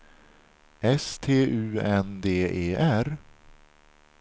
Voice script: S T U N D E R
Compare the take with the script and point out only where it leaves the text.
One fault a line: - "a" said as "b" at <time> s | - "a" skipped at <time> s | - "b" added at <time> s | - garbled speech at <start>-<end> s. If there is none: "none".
none